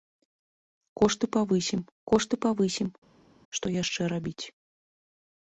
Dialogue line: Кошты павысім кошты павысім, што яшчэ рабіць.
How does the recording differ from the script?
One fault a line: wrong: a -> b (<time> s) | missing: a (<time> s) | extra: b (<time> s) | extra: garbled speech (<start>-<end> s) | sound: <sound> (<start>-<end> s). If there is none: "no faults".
no faults